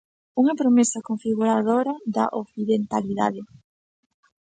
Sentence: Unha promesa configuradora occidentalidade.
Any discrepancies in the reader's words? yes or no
yes